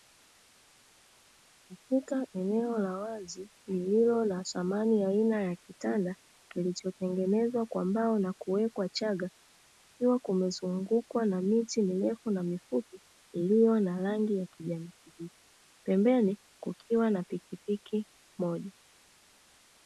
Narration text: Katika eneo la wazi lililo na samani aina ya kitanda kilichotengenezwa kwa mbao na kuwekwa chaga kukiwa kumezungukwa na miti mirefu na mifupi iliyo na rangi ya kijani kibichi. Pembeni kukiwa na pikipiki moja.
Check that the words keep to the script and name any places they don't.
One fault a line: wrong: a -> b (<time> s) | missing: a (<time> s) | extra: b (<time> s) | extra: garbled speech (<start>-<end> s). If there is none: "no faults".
no faults